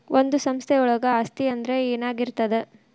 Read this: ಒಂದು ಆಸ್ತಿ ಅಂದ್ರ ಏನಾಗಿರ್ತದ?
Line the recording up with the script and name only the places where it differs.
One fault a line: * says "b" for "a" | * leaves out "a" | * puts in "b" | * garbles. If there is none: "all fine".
* puts in "ಸಂಸ್ಥೆಯೊಳಗ"